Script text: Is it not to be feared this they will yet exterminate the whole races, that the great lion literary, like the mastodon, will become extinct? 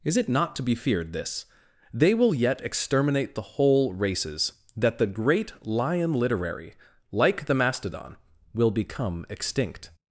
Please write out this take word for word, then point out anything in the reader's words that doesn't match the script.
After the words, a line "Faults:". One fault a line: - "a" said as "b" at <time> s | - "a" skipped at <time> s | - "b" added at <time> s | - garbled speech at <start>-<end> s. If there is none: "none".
Is it not to be feared this they will yet exterminate the whole races, that the great lion literary, like the mastodon, will become extinct?
Faults:
none